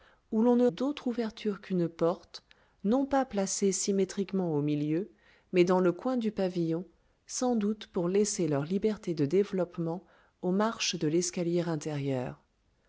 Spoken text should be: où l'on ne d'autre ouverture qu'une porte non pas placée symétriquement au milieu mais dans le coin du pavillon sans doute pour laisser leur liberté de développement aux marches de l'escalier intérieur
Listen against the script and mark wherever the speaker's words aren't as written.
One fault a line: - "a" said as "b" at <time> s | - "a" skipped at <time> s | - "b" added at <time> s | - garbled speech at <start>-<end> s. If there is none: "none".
none